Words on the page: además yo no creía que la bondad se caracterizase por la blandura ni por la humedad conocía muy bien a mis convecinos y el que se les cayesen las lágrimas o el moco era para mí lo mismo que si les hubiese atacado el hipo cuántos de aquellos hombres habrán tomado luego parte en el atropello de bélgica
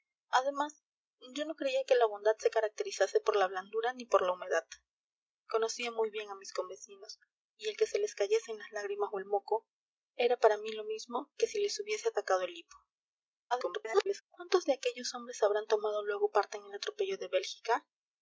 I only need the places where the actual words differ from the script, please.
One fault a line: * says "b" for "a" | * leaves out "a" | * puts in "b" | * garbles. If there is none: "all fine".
* garbles